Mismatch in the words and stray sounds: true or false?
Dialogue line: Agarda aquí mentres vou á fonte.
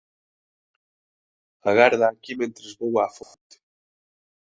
true